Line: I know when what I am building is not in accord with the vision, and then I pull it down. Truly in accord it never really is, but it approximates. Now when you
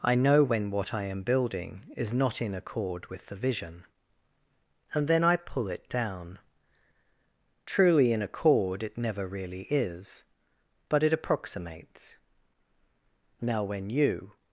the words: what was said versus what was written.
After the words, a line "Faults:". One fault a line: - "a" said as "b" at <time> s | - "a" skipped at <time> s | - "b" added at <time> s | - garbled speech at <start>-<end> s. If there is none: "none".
I know when what I am building is not in accord with the vision, and then I pull it down. Truly in accord it never really is, but it approximates. Now when you
Faults:
none